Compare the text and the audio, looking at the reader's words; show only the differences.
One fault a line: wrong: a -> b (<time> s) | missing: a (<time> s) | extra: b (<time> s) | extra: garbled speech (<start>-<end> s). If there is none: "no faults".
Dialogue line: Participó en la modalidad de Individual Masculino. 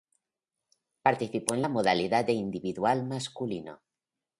no faults